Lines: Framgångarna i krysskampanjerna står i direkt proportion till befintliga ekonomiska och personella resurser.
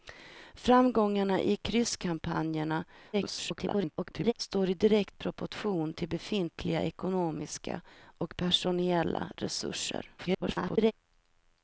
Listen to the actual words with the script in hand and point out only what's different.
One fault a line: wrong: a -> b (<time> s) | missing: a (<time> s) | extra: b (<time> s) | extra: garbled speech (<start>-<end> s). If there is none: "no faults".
extra: garbled speech (3.1-4.3 s)
extra: garbled speech (10.2-10.9 s)